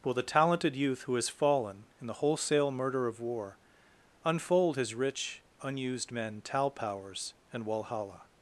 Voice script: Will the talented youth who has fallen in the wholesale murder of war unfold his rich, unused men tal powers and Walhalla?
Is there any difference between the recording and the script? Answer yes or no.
no